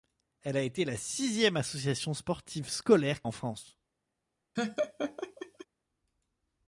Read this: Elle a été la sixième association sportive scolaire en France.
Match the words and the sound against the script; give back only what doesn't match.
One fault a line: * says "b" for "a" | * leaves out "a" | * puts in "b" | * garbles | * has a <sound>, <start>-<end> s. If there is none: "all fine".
* has a laugh, 4.6-5.7 s